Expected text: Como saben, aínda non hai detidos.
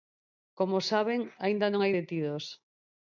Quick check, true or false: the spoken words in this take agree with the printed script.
true